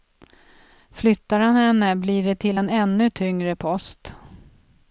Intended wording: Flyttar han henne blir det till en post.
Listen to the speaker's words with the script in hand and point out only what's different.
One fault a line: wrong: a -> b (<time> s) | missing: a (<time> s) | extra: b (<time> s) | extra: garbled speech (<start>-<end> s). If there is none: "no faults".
extra: ännu tyngre (2.7 s)